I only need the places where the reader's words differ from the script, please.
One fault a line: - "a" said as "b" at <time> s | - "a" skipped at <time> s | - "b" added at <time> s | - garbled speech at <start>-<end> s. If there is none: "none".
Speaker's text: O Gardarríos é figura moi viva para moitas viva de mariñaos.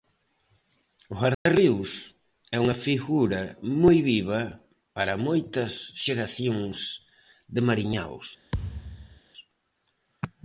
- "unha" added at 2.6 s
- "viva" said as "xeracións" at 6.0 s